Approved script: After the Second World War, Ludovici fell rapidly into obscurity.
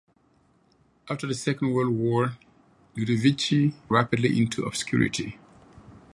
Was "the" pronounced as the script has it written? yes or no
yes